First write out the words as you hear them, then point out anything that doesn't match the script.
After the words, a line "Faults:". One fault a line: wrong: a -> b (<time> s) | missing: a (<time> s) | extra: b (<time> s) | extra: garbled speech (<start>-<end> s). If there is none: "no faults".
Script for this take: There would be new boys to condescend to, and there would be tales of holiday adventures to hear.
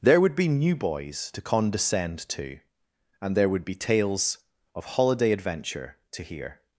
There would be new boys to condescend to, and there would be tales of holiday adventure to hear.
Faults:
wrong: adventures -> adventure (5.3 s)